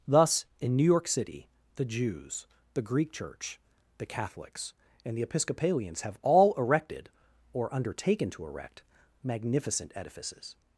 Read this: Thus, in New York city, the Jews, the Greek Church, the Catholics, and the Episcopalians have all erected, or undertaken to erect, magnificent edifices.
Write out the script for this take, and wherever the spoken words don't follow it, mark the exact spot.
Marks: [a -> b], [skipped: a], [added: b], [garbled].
Thus, in New York city, the Jews, the Greek Church, the Catholics, and the Episcopalians have all erected, or undertaken to erect, magnificent edifices.